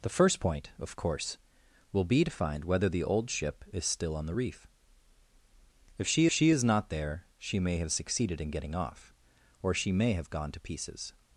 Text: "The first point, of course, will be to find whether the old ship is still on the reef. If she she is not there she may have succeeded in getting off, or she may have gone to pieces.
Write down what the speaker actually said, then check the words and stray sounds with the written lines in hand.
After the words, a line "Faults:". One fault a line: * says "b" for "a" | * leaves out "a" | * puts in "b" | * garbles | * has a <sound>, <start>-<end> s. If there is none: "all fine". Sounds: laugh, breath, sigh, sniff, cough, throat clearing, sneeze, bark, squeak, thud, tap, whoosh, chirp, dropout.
"The first point, of course, will be to find whether the old ship is still on the reef. If she she is not there she may have succeeded in getting off, or she may have gone to pieces.
Faults:
all fine